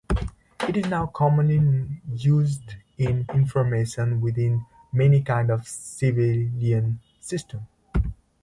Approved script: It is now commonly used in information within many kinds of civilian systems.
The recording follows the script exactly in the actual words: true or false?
true